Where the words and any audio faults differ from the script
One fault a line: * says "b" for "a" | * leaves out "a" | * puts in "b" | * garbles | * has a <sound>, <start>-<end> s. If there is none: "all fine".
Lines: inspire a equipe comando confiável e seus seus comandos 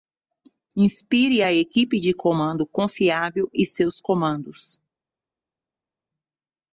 * puts in "de"
* leaves out "seus"